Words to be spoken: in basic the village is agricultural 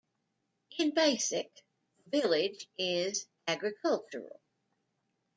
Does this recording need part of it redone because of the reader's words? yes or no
no